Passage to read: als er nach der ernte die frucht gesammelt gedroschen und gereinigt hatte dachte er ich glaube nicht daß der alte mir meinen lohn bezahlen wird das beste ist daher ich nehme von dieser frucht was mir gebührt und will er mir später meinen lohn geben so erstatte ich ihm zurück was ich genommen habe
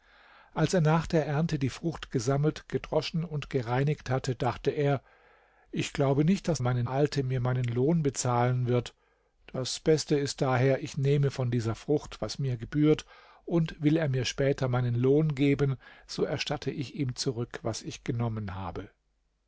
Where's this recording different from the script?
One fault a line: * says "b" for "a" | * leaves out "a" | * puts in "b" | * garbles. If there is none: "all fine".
* says "meinen" for "der"